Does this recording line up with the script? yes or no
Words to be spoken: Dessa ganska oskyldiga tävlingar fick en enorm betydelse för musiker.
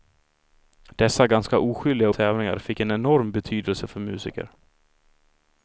yes